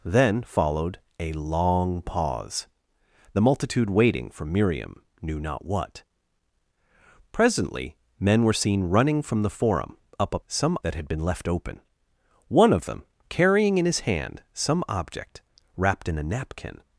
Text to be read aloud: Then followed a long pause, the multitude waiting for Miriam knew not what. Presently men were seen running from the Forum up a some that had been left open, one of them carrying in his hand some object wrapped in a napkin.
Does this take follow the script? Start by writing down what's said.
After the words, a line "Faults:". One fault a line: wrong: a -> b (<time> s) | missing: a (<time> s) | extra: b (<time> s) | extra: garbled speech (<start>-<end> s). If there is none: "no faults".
Then followed a long pause, the multitude waiting for Miriam knew not what. Presently men were seen running from the Forum up a some that had been left open, one of them carrying in his hand some object wrapped in a napkin.
Faults:
no faults